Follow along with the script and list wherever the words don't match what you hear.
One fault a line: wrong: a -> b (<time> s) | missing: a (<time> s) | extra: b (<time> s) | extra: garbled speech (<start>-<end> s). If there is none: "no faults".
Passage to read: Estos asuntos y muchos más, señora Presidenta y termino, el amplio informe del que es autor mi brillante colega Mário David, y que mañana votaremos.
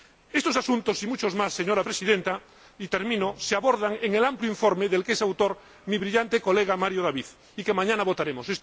extra: se abordan en (3.4 s)